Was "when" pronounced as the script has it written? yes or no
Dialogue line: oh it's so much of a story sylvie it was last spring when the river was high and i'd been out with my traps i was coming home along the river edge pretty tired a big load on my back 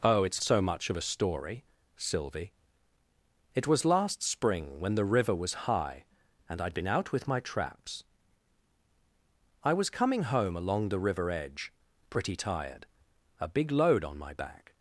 yes